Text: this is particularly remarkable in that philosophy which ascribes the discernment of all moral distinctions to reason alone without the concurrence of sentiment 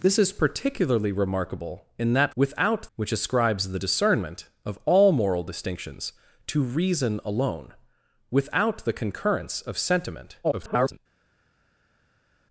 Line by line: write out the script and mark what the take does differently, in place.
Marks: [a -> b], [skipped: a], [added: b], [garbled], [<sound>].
this is particularly remarkable in that [philosophy -> without] which ascribes the discernment of all moral distinctions to reason alone without the concurrence of sentiment [garbled]